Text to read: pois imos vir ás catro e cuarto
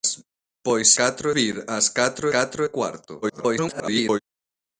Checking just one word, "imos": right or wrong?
wrong